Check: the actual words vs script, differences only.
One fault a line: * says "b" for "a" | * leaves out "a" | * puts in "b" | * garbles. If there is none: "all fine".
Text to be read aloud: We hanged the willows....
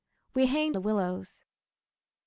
all fine